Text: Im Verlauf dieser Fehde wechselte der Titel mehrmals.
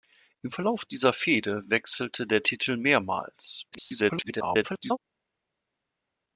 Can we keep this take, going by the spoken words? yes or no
no